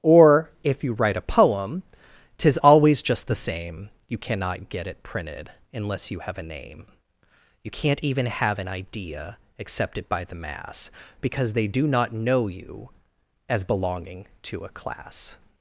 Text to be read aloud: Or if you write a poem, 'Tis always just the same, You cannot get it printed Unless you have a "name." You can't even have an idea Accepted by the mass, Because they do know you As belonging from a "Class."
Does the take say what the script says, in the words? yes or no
no